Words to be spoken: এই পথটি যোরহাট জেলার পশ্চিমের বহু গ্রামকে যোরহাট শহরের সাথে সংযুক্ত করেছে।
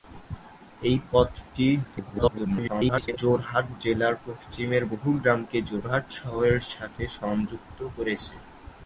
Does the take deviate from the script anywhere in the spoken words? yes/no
yes